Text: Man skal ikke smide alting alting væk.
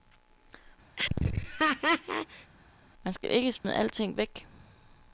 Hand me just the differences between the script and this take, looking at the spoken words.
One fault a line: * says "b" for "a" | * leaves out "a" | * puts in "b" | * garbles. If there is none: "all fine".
* leaves out "alting"